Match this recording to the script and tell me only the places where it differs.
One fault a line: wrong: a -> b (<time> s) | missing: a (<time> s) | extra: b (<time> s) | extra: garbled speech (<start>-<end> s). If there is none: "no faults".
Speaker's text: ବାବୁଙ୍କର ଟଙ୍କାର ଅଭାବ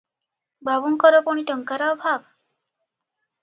extra: ପୁଣି (1.3 s)